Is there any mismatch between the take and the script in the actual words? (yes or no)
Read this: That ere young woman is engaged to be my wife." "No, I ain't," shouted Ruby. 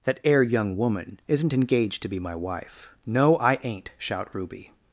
yes